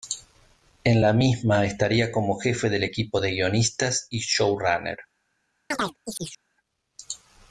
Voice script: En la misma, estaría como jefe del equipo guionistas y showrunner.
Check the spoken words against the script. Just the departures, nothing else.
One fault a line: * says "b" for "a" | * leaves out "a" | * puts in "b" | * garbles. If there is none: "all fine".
* puts in "de"